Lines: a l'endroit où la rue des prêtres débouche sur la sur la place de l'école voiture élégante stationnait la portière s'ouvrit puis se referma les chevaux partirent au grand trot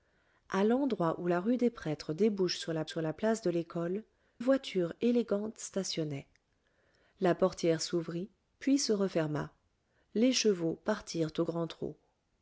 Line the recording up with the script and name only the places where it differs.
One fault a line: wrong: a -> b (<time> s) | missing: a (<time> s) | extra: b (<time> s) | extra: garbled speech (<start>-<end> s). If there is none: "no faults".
no faults